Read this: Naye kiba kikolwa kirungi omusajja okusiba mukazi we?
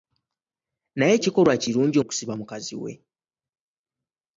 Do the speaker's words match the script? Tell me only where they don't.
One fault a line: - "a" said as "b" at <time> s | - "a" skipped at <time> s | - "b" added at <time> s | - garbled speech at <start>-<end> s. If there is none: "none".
- "kiba" skipped at 1.1 s
- "omusajja" skipped at 2.0 s